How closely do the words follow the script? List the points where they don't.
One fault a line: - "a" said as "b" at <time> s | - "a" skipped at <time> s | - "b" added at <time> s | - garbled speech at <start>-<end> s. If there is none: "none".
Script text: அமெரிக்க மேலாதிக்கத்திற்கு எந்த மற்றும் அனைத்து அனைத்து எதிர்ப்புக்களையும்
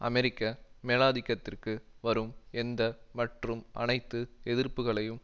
- "வரும்" added at 2.0 s
- "அனைத்து" skipped at 4.2 s